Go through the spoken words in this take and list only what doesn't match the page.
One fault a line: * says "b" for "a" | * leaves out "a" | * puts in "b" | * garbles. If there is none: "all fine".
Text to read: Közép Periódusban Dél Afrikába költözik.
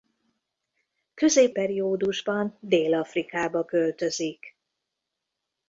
all fine